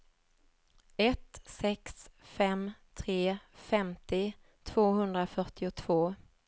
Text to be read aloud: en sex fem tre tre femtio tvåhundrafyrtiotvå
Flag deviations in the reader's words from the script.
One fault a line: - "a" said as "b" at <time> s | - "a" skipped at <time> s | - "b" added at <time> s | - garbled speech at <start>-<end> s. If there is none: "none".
- "en" said as "ett" at 1.0 s
- "tre" skipped at 3.4 s